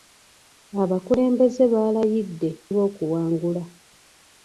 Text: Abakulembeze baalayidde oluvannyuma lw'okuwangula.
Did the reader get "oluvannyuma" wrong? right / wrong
wrong